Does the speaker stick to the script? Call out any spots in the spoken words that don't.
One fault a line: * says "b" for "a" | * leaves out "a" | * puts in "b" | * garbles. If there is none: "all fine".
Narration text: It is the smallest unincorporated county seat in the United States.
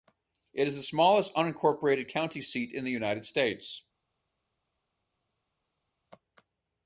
all fine